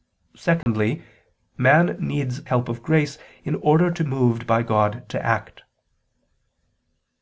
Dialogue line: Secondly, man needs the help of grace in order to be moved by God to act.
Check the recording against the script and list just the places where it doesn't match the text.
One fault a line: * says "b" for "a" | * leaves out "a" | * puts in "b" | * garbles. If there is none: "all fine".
* leaves out "the"
* leaves out "be"